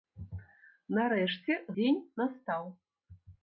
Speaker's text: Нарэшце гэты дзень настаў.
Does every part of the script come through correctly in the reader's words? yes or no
no